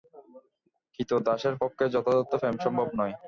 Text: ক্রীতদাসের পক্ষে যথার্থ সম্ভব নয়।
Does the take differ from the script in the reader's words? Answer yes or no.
yes